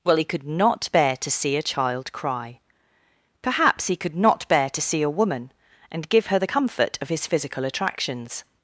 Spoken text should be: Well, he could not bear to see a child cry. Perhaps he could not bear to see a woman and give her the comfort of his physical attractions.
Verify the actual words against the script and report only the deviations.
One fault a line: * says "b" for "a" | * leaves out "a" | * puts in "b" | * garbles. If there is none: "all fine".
all fine